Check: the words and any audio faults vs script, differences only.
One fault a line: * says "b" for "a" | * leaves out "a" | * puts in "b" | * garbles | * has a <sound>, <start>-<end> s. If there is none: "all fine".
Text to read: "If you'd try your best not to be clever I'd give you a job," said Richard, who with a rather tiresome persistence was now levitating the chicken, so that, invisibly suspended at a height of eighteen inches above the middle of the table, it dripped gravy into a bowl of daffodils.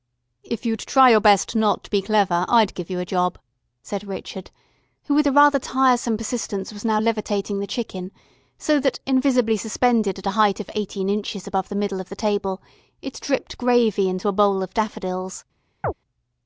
* has a chirp, 15.8-15.9 s